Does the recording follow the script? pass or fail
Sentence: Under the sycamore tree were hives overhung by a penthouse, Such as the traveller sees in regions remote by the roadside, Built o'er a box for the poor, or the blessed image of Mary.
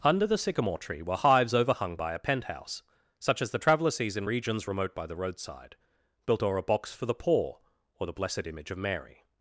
pass